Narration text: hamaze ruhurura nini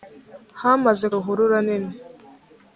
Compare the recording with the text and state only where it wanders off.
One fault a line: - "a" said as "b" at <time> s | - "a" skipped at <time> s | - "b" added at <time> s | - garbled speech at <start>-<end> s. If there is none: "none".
none